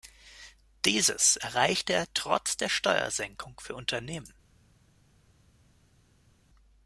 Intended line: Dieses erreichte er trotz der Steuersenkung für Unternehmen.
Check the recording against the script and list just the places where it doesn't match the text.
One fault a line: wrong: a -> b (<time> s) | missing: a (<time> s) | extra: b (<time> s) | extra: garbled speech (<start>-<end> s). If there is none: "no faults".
no faults